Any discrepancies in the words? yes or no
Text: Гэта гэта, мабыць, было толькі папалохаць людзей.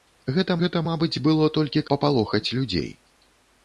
no